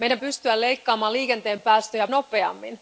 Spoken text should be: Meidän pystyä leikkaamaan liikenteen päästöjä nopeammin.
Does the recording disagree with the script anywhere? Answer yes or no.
no